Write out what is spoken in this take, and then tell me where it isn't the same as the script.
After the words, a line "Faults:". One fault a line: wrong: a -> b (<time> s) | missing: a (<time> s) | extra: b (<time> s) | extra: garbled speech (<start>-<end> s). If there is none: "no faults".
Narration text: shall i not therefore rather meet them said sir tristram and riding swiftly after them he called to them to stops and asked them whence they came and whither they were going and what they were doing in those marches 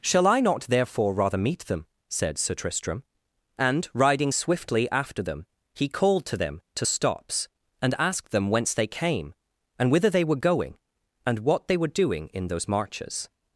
shall i not therefore rather meet them said sir tristram and riding swiftly after them he called to them to stops and asked them whence they came and whither they were going and what they were doing in those marches
Faults:
no faults